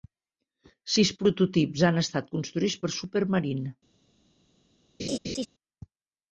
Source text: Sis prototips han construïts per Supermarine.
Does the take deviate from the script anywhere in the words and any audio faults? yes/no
yes